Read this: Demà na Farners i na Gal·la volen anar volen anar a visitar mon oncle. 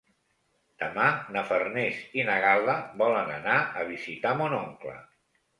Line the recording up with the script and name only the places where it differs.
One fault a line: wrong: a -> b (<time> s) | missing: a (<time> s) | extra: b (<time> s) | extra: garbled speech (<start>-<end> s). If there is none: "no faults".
missing: volen anar (3.6 s)